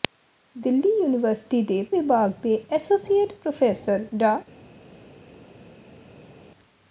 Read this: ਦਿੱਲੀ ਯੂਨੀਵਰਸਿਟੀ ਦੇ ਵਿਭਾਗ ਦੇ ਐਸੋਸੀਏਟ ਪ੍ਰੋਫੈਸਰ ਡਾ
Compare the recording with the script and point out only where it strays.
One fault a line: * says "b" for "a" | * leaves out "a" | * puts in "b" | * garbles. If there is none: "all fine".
all fine